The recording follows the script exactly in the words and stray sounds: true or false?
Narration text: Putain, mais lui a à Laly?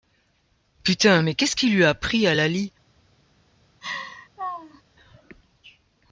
false